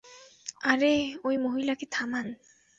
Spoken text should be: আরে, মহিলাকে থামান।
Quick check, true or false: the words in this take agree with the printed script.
false